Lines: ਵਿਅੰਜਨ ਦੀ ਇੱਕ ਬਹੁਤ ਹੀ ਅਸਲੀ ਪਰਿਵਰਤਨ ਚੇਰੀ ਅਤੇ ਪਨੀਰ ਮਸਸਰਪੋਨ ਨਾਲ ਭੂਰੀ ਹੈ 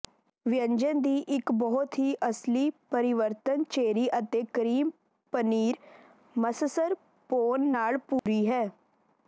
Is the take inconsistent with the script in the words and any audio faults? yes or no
yes